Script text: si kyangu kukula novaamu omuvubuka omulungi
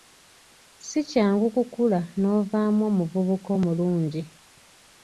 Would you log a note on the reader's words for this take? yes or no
no